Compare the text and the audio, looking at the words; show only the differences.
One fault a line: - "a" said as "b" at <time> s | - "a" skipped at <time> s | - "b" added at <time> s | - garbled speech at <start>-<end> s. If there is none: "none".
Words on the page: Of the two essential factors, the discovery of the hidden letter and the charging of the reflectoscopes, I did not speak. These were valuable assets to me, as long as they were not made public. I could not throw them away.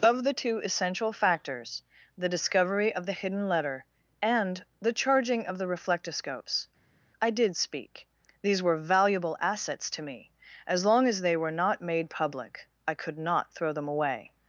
- "not" skipped at 7.6 s